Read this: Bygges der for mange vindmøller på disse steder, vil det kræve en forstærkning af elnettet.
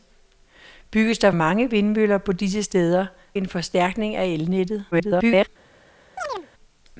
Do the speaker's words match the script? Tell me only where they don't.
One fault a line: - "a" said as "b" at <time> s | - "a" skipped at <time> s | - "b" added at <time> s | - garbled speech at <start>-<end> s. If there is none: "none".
- "for" skipped at 1.3 s
- "vil det kræve" skipped at 3.1 s
- garbled speech at 4.9-5.5 s